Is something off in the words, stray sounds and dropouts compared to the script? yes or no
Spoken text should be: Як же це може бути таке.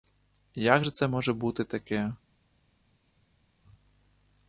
no